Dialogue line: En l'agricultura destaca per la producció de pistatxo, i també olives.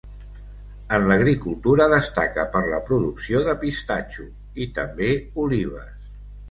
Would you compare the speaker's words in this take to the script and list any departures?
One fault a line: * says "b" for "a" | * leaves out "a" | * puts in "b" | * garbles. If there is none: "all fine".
all fine